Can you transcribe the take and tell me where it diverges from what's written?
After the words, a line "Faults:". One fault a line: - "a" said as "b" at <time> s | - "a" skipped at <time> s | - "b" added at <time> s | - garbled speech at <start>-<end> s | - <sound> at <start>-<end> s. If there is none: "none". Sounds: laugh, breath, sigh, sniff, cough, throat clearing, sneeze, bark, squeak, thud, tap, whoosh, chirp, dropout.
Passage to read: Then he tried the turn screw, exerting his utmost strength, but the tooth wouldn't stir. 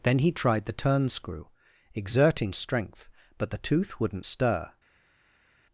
Then he tried the turn screw, exerting strength, but the tooth wouldn't stir.
Faults:
- "his utmost" skipped at 2.5 s